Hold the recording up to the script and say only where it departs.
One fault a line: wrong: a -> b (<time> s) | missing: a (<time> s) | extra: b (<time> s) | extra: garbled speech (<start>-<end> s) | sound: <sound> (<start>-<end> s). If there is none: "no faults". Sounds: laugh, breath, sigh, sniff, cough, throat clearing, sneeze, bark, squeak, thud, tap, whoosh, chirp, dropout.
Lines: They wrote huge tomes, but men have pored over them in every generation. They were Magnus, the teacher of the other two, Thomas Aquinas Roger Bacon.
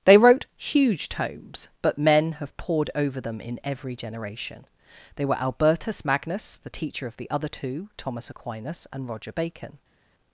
extra: Albertus (5.4 s)
extra: and (8.9 s)